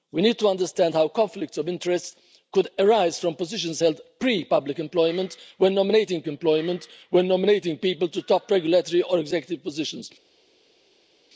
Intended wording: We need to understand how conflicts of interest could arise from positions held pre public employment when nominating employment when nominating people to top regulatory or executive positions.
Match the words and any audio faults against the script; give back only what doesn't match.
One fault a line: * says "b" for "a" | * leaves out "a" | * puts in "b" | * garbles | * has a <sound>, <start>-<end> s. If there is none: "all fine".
all fine